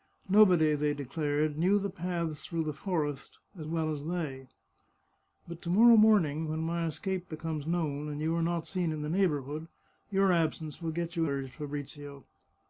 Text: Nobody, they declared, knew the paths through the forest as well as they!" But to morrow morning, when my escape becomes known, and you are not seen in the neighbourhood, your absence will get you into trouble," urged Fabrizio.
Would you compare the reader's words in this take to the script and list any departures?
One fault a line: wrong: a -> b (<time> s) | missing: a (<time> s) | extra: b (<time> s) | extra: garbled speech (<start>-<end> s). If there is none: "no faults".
missing: into trouble (11.3 s)